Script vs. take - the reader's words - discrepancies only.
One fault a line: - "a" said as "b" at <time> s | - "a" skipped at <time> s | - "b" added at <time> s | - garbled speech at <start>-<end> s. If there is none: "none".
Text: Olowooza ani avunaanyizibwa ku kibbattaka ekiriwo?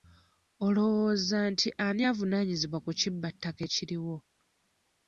- "nti" added at 1.5 s